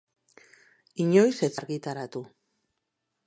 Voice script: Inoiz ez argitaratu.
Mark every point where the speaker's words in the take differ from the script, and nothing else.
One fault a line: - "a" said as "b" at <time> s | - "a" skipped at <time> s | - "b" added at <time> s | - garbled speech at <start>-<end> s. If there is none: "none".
none